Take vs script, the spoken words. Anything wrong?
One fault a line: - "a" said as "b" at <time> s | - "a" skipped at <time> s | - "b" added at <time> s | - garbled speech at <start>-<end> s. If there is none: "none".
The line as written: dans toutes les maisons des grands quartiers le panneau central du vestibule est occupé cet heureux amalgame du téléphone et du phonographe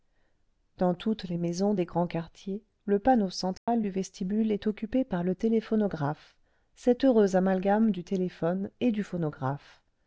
- "par le téléphonographe" added at 5.0 s